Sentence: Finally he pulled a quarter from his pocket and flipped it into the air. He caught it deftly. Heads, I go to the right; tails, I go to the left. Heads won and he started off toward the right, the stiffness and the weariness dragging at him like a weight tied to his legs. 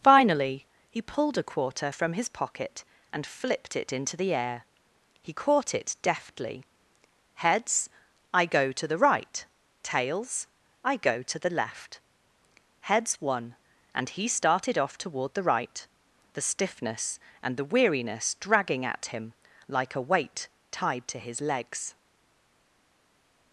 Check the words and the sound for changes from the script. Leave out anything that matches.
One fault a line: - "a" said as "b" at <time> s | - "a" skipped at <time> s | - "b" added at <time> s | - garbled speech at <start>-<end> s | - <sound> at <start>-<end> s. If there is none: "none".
none